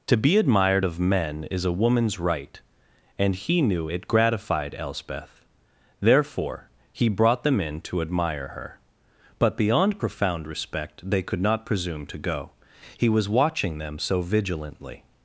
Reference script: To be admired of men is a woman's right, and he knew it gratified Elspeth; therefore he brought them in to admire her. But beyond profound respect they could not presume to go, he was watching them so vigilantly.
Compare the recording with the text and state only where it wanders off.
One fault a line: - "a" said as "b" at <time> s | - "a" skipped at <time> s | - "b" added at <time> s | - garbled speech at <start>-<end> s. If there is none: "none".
none